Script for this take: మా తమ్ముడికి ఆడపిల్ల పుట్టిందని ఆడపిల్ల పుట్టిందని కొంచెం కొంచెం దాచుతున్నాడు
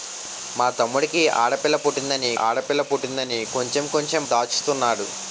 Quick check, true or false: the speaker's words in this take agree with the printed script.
true